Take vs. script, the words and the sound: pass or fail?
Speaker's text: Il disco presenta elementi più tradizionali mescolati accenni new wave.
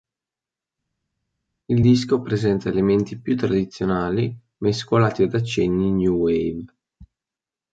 fail